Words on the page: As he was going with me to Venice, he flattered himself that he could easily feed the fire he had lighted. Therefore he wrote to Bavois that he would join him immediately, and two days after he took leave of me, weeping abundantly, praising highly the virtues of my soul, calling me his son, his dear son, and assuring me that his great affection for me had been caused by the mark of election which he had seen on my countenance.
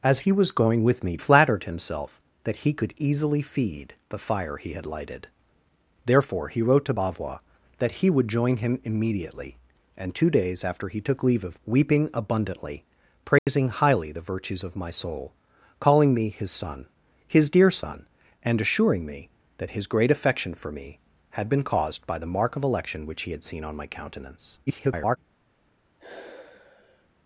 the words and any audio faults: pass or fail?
fail